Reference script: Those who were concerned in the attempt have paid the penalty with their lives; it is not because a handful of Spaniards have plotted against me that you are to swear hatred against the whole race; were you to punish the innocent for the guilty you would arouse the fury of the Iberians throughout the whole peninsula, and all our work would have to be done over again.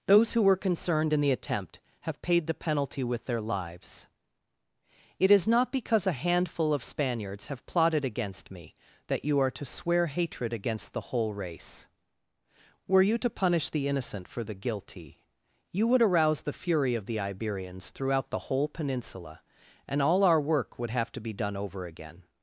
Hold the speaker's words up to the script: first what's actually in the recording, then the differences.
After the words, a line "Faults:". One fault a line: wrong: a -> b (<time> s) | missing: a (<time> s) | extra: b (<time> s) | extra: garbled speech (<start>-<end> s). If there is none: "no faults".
Those who were concerned in the attempt have paid the penalty with their lives; it is not because a handful of Spaniards have plotted against me that you are to swear hatred against the whole race; were you to punish the innocent for the guilty you would arouse the fury of the Iberians throughout the whole peninsula, and all our work would have to be done over again.
Faults:
no faults